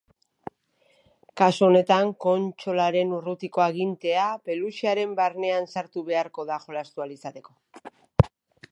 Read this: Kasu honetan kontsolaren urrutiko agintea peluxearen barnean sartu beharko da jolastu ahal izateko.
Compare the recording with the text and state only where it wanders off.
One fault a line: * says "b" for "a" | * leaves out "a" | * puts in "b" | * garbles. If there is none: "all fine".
all fine